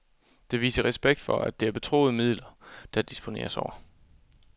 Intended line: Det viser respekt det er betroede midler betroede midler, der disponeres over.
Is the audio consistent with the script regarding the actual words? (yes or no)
no